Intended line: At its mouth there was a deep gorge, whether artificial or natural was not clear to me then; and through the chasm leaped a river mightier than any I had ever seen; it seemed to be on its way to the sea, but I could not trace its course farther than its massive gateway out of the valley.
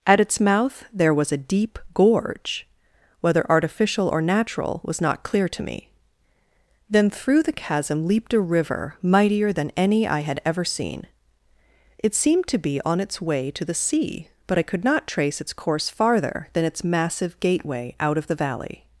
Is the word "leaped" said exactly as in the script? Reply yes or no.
yes